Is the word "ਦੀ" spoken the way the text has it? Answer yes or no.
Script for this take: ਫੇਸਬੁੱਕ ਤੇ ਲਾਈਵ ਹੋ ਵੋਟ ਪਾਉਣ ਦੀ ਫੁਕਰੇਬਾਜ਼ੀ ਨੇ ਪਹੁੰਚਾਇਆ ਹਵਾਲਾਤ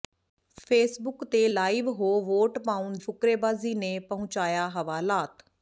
no